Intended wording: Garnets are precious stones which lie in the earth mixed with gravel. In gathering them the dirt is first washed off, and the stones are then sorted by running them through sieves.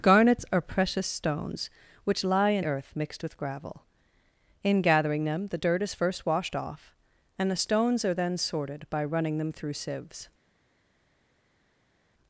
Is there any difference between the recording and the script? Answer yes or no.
yes